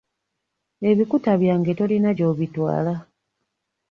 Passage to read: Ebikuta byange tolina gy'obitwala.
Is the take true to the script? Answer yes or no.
yes